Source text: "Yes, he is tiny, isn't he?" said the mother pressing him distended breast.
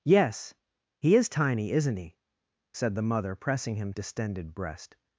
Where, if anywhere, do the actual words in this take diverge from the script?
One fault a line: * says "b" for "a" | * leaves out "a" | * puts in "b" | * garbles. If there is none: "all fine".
all fine